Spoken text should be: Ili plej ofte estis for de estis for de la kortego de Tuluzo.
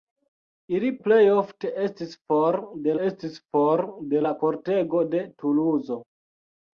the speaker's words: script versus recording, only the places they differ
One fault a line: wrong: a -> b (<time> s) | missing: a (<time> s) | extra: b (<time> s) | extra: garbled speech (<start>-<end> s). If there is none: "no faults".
no faults